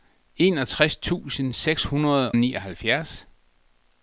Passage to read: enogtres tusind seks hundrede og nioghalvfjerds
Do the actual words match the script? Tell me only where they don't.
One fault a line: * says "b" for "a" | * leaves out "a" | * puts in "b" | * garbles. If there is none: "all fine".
* leaves out "og"